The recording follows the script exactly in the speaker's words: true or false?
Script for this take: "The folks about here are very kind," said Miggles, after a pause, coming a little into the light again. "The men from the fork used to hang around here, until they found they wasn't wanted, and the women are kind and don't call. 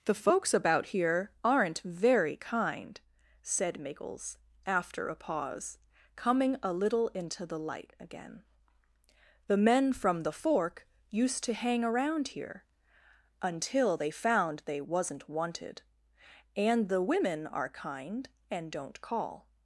false